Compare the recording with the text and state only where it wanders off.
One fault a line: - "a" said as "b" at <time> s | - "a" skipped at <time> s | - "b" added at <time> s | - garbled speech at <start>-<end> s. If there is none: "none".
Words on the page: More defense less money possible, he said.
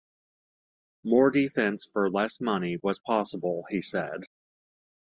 - "for" added at 1.9 s
- "was" added at 2.8 s